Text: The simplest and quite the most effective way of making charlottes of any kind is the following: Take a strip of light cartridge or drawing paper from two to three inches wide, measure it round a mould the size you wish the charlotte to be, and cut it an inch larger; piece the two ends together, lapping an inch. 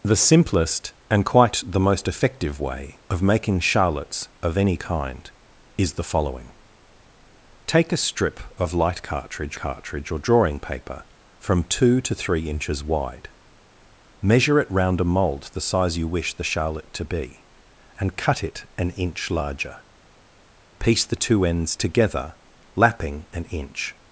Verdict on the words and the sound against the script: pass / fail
fail